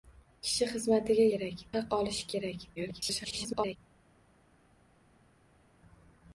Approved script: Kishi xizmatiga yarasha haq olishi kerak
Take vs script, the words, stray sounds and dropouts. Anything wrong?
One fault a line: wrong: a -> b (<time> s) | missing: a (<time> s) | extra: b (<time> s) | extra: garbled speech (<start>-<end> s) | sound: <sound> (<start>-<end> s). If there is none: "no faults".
wrong: yarasha -> kerak (1.3 s)
extra: garbled speech (2.8-3.8 s)